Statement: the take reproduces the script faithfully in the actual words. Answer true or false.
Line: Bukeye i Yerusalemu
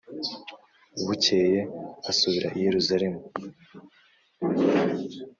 false